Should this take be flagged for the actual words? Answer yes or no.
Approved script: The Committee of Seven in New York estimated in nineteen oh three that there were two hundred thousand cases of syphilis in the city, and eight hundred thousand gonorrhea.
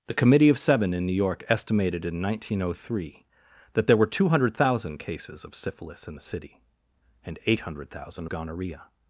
no